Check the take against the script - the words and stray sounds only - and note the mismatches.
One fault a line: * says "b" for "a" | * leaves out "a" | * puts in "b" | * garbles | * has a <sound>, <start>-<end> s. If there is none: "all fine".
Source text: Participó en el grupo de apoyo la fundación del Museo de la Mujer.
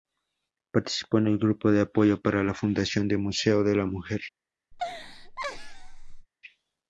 * puts in "para"
* has a laugh, 4.7-6.3 s